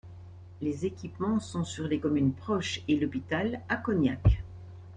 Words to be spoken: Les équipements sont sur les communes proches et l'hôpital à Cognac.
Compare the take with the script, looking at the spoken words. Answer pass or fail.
pass